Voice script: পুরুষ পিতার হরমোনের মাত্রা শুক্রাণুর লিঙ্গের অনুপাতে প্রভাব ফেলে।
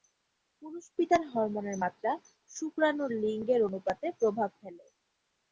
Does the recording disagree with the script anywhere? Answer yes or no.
no